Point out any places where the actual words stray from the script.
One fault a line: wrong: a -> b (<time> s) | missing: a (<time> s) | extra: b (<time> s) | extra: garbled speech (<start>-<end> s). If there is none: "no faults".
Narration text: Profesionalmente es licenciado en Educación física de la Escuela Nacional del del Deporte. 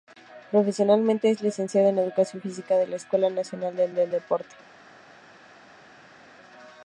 no faults